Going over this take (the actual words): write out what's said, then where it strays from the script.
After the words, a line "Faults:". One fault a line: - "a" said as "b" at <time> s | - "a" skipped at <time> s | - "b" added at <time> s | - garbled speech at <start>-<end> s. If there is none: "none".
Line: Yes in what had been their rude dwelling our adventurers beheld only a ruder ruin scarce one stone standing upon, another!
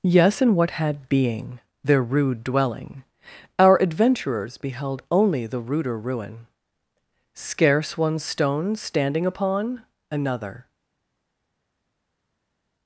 Yes in what had being their rude dwelling our adventurers beheld only the ruder ruin scarce one stone standing upon, another!
Faults:
- "been" said as "being" at 1.1 s
- "a" said as "the" at 5.5 s